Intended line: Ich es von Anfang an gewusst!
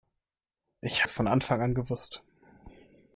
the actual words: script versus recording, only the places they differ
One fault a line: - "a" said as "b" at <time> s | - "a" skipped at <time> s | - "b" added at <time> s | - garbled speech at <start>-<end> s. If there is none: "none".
none